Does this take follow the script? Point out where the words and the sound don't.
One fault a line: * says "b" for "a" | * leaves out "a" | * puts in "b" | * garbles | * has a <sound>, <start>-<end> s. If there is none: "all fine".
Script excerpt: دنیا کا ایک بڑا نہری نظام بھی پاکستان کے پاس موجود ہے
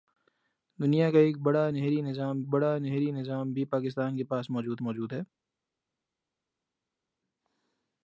* puts in "بڑا نہری نظام"
* puts in "موجود"